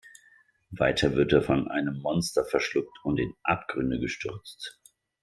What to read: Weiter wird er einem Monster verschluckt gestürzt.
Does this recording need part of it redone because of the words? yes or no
yes